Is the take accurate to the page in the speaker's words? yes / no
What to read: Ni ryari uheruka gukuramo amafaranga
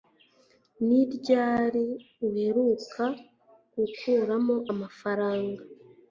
yes